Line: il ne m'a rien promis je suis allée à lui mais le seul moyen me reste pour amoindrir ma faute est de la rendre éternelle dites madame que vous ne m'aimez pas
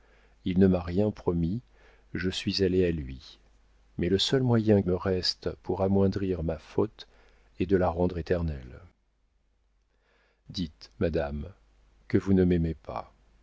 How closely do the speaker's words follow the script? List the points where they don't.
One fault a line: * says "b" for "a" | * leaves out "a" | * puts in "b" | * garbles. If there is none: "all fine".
all fine